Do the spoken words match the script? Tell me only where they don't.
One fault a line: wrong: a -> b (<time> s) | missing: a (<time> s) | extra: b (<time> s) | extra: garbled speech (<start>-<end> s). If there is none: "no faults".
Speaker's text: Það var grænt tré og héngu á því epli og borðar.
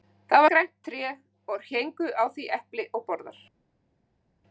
missing: var (0.5 s)